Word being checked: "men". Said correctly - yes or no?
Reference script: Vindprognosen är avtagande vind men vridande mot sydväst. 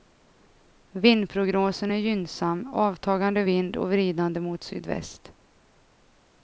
no